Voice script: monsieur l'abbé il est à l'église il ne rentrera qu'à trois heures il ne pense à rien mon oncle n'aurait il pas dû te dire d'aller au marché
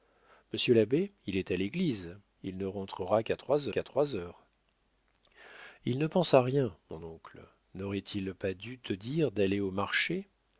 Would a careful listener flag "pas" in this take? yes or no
no